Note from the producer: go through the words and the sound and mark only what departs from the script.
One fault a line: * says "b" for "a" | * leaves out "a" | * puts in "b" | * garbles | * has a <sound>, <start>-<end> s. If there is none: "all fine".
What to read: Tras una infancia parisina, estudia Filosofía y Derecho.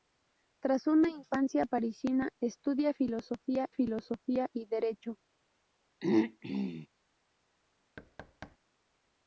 * puts in "Filosofía"
* has a throat clearing, 6.0-6.9 s
* has a thud, 8.0-8.6 s